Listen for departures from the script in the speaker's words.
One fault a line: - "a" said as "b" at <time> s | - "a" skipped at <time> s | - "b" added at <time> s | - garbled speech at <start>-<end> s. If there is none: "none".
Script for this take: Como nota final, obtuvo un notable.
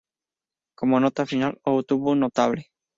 none